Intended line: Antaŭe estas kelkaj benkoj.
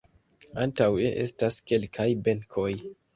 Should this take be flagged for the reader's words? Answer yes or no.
no